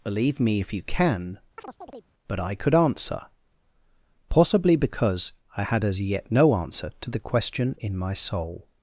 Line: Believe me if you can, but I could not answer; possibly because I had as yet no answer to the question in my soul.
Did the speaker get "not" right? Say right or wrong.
wrong